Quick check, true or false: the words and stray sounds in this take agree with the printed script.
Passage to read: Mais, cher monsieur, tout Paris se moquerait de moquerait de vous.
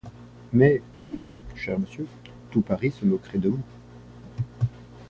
false